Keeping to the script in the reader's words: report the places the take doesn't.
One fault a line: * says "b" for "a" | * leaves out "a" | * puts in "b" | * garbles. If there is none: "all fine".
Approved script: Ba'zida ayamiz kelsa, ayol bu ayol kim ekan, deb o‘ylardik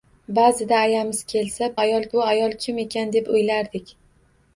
all fine